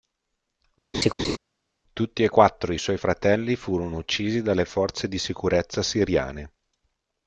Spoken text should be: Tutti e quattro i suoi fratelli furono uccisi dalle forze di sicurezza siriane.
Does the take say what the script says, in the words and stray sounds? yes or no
no